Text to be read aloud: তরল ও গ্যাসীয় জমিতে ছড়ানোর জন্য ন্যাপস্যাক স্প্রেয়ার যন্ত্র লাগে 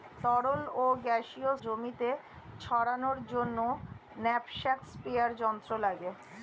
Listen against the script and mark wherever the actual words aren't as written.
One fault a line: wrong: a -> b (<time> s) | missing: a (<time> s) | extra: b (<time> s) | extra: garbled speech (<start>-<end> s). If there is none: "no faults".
no faults